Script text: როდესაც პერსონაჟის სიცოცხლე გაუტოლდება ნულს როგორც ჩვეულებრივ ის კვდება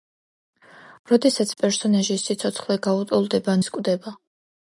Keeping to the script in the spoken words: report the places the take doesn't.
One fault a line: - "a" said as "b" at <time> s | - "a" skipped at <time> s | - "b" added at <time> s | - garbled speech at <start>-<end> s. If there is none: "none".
- "ნულს როგორც ჩვეულებრივ" skipped at 3.5 s